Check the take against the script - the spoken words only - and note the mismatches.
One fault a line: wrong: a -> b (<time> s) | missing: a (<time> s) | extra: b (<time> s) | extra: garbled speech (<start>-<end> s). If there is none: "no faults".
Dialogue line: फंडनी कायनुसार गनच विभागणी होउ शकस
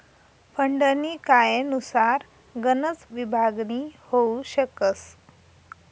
no faults